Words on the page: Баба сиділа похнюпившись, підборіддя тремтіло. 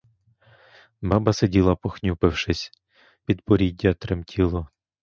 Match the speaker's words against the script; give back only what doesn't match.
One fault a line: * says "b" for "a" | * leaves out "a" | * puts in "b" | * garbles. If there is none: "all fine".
all fine